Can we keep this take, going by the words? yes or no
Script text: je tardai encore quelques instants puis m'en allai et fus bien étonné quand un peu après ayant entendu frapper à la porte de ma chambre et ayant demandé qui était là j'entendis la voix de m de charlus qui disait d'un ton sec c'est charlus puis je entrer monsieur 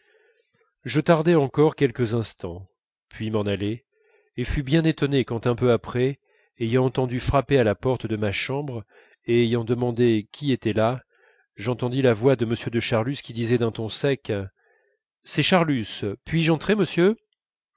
yes